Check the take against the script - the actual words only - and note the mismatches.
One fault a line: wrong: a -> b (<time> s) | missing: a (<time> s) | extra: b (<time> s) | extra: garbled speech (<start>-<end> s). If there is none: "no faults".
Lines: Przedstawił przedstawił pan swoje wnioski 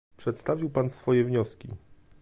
missing: przedstawił (0.7 s)